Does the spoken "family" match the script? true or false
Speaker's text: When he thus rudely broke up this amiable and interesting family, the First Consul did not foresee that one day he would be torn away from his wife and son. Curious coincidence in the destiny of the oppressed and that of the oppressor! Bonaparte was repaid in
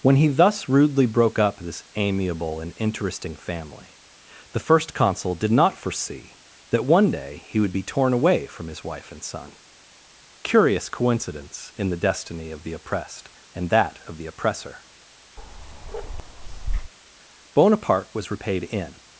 true